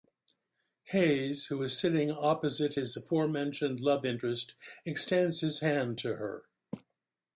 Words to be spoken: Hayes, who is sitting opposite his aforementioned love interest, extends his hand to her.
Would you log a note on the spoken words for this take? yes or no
no